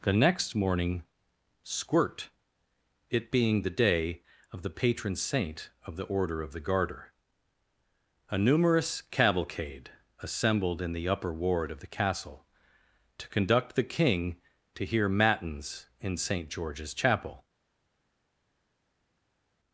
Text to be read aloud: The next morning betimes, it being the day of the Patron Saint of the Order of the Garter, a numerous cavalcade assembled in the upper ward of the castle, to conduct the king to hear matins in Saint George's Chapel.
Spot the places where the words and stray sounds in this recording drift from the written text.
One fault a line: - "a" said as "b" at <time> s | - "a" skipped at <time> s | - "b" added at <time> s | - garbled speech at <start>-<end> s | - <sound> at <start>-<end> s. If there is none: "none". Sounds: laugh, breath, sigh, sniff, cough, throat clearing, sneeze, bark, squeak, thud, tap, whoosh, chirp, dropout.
- "betimes" said as "squirt" at 1.6 s